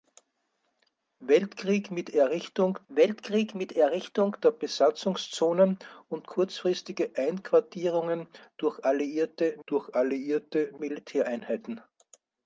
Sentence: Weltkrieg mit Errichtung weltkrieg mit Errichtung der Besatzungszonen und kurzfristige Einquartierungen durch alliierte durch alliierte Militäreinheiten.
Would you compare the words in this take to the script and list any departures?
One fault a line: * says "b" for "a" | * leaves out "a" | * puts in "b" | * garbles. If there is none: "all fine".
all fine